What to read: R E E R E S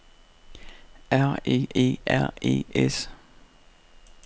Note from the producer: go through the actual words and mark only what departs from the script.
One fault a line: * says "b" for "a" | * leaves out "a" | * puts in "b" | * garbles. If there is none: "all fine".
all fine